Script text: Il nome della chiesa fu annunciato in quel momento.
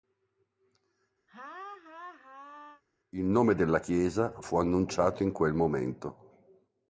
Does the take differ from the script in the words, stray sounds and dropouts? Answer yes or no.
yes